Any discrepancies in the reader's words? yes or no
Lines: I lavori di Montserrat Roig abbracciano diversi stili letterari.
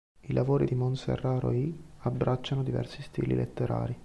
no